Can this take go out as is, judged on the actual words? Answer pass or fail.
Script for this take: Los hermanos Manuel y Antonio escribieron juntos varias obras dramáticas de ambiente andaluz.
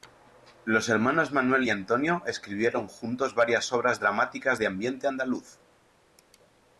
pass